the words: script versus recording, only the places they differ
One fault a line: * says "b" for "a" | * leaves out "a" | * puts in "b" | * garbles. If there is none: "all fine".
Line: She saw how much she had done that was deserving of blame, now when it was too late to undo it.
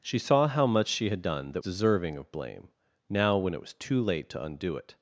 * leaves out "was"